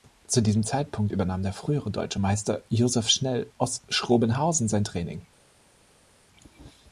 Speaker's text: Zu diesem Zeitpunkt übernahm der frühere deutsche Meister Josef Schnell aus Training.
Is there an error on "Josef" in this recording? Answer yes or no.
no